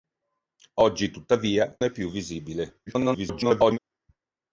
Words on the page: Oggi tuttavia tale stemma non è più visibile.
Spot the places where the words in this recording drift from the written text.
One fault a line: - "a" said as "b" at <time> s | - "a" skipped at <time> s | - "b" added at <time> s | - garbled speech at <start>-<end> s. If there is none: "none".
- "tale stemma non" skipped at 1.8 s
- garbled speech at 2.9-3.8 s